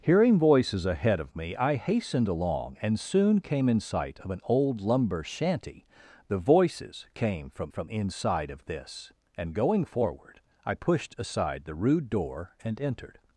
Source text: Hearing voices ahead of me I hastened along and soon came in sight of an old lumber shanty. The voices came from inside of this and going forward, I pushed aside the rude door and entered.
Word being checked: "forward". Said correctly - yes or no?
yes